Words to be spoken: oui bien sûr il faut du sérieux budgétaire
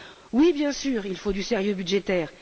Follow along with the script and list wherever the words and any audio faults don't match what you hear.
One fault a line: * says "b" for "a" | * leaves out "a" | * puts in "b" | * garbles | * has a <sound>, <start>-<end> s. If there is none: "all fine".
all fine